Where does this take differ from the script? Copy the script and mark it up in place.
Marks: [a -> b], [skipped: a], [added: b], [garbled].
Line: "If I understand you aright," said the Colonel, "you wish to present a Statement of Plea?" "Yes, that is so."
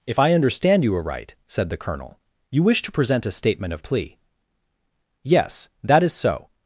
"If I understand you aright," said the Colonel, "you wish to present a Statement of Plea?" "Yes, that is so."